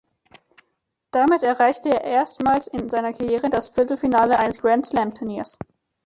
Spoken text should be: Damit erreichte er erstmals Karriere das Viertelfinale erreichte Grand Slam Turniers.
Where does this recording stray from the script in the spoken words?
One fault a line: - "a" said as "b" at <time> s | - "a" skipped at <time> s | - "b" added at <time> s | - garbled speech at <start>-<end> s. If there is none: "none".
- "in seiner" added at 2.7 s
- "erreichte" said as "eines" at 4.4 s